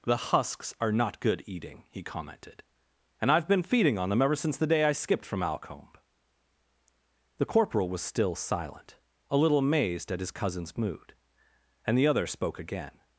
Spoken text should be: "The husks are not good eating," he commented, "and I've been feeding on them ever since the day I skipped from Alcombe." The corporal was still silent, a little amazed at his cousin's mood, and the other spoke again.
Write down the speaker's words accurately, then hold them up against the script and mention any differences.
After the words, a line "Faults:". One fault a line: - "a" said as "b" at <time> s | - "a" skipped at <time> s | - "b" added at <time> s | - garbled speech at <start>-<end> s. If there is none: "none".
"The husks are not good eating," he commented, "and I've been feeding on them ever since the day I skipped from Alcombe." The corporal was still silent, a little amazed at his cousin's mood, and the other spoke again.
Faults:
none